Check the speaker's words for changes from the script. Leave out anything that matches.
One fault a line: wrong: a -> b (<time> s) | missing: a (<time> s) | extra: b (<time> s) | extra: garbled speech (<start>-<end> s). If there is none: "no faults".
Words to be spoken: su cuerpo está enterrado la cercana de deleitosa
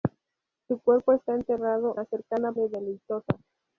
no faults